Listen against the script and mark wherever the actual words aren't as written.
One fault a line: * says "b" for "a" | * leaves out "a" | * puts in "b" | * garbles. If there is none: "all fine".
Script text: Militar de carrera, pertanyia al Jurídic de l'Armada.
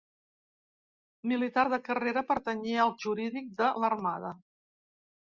all fine